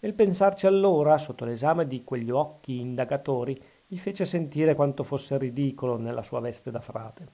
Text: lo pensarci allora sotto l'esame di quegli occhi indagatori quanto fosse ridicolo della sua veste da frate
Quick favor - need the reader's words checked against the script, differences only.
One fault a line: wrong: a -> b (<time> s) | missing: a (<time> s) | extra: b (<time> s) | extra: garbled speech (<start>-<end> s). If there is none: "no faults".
wrong: lo -> il (0.0 s)
extra: gli fece sentire (3.9 s)
wrong: della -> nella (6.0 s)